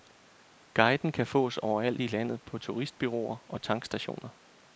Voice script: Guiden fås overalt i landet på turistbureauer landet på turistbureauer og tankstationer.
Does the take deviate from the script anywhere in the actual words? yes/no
yes